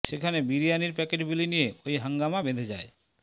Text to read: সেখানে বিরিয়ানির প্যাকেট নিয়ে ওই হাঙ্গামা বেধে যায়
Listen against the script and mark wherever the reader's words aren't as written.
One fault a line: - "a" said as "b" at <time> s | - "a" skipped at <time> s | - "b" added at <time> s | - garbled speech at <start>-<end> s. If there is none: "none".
- "বিলি" added at 1.3 s